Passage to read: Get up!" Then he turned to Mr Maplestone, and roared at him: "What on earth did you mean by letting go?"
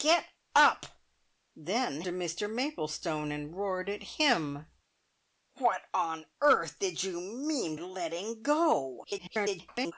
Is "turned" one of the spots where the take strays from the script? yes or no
yes